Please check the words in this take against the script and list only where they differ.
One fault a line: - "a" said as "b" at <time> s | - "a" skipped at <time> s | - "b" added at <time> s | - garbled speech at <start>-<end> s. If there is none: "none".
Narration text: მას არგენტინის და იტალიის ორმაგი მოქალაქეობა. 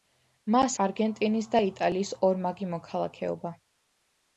none